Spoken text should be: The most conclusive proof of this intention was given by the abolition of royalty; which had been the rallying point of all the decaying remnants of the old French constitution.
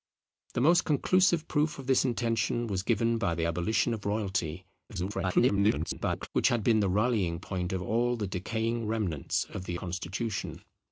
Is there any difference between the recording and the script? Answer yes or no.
yes